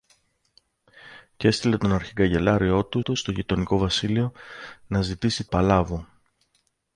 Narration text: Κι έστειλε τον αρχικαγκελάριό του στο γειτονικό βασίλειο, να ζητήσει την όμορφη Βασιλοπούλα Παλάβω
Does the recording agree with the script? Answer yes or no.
no